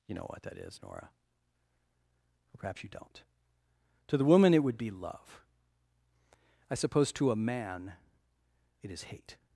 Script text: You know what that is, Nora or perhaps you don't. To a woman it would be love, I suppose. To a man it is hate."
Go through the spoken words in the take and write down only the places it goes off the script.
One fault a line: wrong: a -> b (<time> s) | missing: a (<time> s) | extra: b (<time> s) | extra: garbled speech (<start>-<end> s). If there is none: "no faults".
wrong: a -> the (4.2 s)